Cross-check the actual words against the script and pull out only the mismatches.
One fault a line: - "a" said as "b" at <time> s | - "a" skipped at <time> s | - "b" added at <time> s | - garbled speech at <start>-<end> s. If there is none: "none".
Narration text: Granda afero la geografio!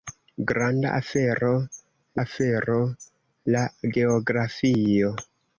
- "afero" added at 2.2 s